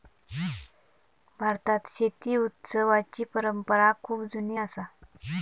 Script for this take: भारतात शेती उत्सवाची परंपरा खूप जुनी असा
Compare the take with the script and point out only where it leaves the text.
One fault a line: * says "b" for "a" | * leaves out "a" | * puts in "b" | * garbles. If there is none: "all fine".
all fine